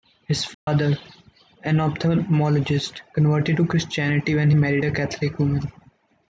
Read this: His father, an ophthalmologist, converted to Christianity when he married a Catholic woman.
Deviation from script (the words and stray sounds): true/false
true